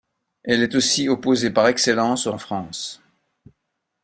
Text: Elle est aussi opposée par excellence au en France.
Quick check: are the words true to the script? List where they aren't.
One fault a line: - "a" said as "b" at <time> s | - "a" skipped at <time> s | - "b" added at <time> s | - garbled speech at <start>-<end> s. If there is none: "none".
none